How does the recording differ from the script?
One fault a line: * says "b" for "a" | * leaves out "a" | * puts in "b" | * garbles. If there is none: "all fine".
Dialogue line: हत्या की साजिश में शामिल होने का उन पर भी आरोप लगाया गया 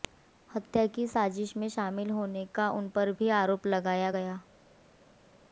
all fine